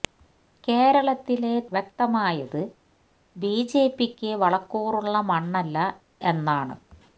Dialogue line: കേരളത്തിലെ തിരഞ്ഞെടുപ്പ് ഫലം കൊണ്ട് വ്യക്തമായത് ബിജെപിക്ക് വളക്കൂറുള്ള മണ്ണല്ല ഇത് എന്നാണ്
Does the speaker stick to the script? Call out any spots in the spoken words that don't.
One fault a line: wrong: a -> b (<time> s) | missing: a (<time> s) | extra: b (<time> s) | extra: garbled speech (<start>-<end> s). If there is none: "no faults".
missing: തിരഞ്ഞെടുപ്പ് ഫലം കൊണ്ട് (1.6 s)
missing: ഇത് (5.8 s)